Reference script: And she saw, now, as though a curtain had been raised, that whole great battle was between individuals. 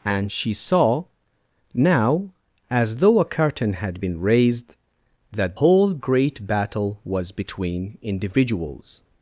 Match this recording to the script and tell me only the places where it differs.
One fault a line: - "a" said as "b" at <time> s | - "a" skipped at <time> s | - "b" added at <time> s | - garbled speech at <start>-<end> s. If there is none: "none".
none